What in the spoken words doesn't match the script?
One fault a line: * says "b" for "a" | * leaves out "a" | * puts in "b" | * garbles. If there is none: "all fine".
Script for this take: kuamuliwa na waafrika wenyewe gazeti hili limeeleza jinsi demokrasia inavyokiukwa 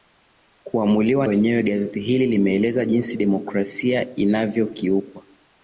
* leaves out "na waafrika"